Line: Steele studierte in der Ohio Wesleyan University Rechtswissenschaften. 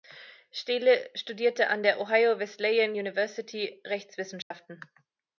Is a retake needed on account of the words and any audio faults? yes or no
yes